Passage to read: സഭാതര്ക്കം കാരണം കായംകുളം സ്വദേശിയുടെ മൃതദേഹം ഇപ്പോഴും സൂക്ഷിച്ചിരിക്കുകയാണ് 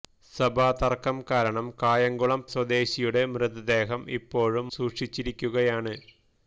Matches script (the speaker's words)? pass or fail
pass